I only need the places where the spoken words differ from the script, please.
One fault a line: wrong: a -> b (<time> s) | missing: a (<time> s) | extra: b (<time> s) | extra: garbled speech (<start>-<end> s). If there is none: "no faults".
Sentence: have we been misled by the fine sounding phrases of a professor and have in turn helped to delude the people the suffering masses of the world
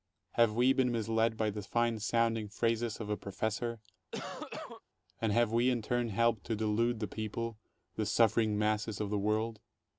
extra: we (5.5 s)